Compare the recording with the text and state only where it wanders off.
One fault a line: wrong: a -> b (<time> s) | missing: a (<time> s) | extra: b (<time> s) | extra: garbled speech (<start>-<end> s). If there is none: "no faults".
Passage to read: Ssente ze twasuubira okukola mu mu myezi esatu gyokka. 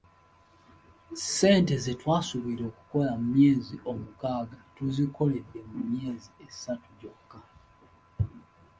extra: myezi omukaaga tuzikoledde (3.4 s)